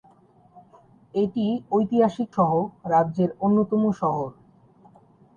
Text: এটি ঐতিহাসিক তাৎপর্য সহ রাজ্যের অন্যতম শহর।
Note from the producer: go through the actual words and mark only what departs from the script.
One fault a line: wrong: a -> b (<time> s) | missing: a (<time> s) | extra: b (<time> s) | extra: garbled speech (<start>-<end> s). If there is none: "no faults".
missing: তাৎপর্য (2.3 s)